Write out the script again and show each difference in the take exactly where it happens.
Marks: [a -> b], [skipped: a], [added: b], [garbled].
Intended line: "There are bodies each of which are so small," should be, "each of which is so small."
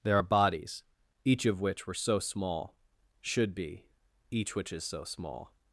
"There are bodies each of which [are -> were] so small," should be, "each [skipped: of] which is so small."